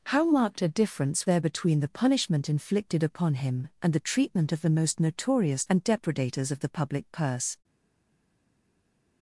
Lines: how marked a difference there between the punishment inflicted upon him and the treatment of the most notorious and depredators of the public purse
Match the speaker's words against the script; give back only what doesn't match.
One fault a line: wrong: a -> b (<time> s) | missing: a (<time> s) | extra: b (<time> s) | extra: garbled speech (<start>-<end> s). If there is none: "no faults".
no faults